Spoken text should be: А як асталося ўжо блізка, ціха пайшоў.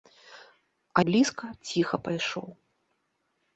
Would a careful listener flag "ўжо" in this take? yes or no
yes